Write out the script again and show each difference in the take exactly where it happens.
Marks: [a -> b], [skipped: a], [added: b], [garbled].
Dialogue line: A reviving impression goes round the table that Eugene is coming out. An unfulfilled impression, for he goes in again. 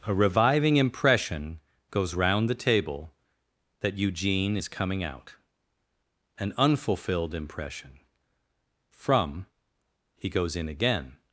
A reviving impression goes round the table that Eugene is coming out. An unfulfilled impression, [for -> from] he goes in again.